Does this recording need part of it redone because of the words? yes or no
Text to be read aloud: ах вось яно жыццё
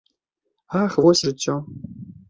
yes